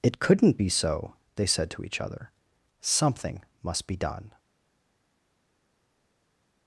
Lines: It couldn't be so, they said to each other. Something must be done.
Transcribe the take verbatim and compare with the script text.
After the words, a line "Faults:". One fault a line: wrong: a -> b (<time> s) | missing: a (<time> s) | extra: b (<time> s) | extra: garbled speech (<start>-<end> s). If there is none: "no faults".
It couldn't be so, they said to each other. Something must be done.
Faults:
no faults